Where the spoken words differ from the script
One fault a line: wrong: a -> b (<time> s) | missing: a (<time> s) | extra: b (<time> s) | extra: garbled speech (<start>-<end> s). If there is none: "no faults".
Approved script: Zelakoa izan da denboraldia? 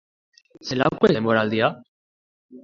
missing: izan (1.1 s)